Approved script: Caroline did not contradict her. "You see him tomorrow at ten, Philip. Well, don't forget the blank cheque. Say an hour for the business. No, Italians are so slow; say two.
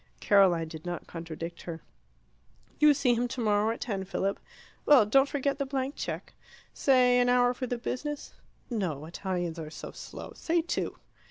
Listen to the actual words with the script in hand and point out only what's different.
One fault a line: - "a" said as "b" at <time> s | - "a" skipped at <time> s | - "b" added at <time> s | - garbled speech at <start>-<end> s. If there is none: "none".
none